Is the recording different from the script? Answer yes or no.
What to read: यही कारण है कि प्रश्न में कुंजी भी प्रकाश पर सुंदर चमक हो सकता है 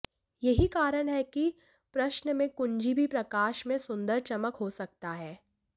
yes